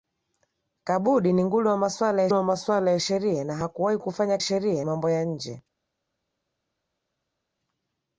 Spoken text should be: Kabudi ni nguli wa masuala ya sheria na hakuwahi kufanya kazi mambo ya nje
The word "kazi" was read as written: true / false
false